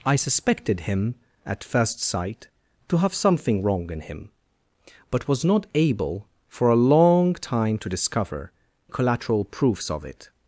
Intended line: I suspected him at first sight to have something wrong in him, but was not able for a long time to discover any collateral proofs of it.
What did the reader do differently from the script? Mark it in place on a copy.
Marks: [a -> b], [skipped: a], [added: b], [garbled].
I suspected him at first sight to have something wrong in him, but was not able for a long time to discover [skipped: any] collateral proofs of it.